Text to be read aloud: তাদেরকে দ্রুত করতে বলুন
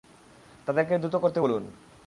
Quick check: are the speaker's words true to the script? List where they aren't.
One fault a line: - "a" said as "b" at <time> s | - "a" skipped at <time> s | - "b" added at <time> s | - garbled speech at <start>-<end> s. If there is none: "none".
none